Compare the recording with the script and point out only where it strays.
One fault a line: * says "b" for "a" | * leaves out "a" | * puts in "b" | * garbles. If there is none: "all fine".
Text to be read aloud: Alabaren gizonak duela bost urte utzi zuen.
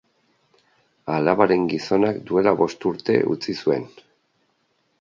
all fine